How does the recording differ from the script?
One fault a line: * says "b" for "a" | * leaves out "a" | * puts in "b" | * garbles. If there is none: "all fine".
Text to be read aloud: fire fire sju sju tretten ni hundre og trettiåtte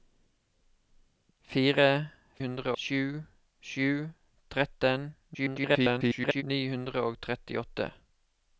* says "hundre" for "fire"
* garbles